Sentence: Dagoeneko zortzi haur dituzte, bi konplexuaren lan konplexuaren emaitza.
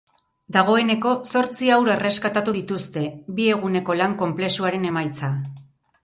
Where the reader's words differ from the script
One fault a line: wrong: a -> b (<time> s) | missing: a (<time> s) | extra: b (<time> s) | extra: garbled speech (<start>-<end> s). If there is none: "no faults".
extra: erreskatatu (1.9 s)
wrong: konplexuaren -> eguneko (3.5 s)